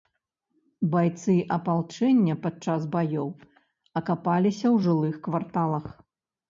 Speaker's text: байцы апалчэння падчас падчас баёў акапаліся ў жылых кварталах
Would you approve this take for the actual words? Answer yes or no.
no